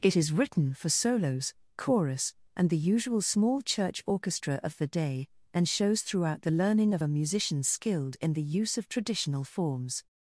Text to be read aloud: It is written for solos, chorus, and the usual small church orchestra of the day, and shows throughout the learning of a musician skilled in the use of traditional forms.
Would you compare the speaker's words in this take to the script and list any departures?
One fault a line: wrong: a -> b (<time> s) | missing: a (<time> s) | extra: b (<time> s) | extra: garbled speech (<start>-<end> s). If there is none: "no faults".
no faults